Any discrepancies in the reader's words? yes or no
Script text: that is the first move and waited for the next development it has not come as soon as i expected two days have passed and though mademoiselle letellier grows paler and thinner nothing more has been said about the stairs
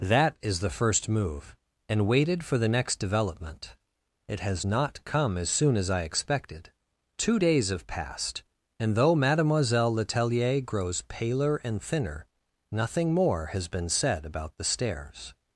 no